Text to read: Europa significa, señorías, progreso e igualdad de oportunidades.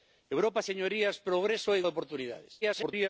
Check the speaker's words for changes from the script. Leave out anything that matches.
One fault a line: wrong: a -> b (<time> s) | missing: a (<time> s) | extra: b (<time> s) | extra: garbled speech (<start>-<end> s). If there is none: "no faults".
missing: significa (0.6 s)
missing: igualdad (1.8 s)
extra: garbled speech (2.6-3.1 s)